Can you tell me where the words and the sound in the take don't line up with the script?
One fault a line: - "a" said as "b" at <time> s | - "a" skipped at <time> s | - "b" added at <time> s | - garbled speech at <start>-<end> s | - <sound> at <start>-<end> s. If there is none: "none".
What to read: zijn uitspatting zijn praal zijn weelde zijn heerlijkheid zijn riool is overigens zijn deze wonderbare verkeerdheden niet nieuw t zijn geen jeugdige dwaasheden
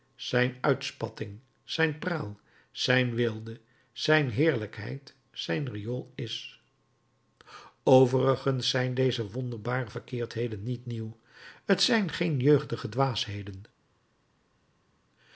none